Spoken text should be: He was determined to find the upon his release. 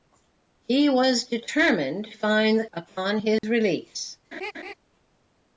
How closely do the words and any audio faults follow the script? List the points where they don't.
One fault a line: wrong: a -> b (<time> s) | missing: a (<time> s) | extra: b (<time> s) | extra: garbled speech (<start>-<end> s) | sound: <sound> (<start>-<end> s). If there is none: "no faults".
sound: dropout (3.4-3.4 s)
sound: laugh (4.3-4.7 s)